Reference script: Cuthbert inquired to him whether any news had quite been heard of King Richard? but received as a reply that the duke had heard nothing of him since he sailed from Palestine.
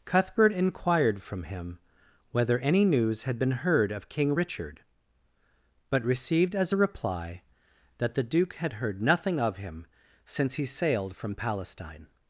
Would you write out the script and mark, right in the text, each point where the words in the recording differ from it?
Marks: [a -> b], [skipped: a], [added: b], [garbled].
Cuthbert inquired [to -> from] him whether any news had [skipped: quite] been heard of King Richard? but received as a reply that the duke had heard nothing of him since he sailed from Palestine.